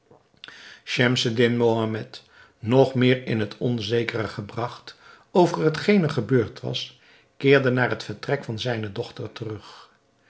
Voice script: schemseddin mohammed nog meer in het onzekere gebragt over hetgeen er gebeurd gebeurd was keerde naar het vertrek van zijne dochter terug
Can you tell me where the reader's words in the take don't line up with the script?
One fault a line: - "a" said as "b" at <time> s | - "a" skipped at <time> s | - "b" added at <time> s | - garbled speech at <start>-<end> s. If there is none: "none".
- "gebeurd" skipped at 6.6 s